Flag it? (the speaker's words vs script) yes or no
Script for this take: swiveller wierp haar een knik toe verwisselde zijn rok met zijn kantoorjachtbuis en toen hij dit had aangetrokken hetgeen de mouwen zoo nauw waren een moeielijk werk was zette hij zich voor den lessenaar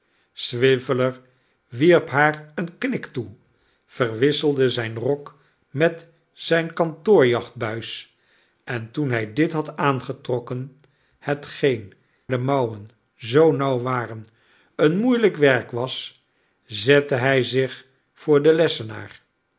no